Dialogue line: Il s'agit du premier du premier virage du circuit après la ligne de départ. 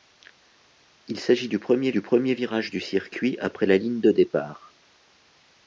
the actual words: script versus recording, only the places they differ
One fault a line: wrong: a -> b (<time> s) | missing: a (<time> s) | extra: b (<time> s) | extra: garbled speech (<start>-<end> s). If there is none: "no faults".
no faults